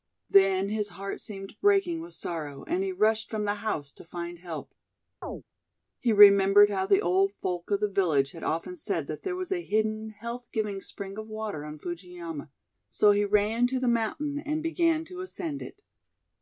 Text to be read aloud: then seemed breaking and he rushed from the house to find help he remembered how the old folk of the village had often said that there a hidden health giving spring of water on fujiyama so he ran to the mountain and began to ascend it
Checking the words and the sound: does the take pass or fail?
fail